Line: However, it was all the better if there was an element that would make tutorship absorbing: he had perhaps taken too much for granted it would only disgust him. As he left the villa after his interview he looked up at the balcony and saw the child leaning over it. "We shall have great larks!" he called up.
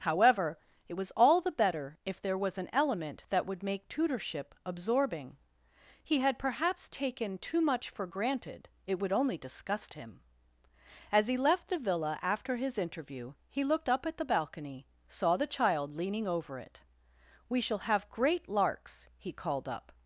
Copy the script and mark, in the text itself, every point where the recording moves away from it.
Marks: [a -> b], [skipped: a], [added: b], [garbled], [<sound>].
However, it was all the better if there was an element that would make tutorship absorbing: he had perhaps taken too much for granted it would only disgust him. As he left the villa after his interview he looked up at the balcony [skipped: and] saw the child leaning over it. "We shall have great larks!" he called up.